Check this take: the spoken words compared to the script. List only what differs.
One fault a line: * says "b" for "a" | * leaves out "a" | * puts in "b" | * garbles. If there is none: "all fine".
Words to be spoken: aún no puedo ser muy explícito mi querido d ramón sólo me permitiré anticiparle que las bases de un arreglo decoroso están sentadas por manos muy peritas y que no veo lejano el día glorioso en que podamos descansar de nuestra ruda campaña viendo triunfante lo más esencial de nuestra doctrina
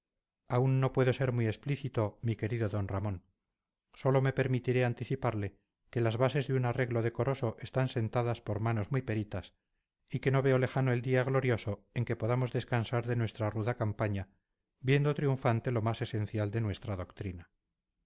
all fine